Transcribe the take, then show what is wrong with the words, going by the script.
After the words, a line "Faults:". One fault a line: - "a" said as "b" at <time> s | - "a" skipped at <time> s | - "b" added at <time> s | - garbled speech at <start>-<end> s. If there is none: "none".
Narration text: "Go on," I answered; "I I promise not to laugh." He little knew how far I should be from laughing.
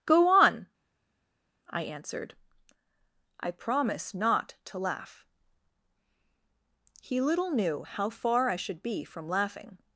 "Go on," I answered; "I promise not to laugh." He little knew how far I should be from laughing.
Faults:
- "I" skipped at 3.5 s